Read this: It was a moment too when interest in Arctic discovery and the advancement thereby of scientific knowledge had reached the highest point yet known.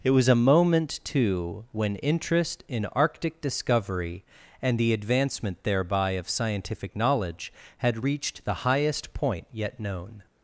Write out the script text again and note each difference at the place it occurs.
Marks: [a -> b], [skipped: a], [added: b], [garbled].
It was a moment too when interest in Arctic discovery and the advancement thereby of scientific knowledge had reached the highest point yet known.